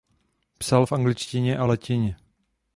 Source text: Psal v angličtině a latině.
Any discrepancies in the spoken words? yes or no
no